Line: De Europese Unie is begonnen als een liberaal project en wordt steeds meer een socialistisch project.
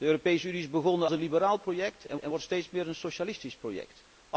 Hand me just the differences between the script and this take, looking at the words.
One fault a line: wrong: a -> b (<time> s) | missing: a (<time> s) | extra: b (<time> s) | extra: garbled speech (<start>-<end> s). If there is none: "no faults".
missing: als (1.1 s)
extra: en (2.2 s)